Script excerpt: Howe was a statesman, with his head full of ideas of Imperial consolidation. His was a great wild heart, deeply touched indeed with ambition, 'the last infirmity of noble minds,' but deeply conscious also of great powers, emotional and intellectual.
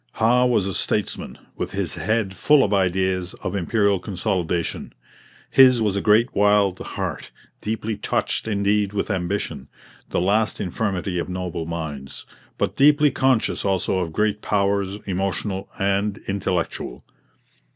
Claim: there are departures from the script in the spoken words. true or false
false